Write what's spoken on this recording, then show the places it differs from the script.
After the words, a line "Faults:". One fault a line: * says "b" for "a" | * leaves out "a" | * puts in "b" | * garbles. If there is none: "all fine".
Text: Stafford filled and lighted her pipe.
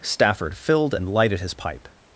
Stafford filled and lighted his pipe.
Faults:
* says "his" for "her"